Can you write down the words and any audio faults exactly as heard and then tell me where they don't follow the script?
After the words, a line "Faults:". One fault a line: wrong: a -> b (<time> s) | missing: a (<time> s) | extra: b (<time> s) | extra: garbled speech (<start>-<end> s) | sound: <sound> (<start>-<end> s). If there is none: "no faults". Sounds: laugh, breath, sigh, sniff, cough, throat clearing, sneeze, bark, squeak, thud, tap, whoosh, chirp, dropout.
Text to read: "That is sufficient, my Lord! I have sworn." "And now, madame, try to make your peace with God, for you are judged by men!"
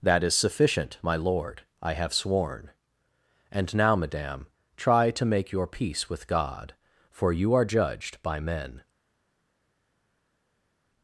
"That is sufficient, my Lord! I have sworn." "And now, madame, try to make your peace with God, for you are judged by men!"
Faults:
no faults